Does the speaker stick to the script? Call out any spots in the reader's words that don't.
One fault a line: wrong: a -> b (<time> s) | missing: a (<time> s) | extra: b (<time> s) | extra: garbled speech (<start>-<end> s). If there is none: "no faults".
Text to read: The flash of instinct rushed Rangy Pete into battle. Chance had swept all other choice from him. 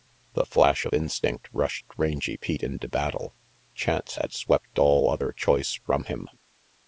no faults